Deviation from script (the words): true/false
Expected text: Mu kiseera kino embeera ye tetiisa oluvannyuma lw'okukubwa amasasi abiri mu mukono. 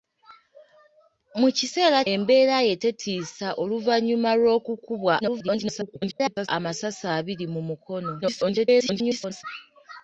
true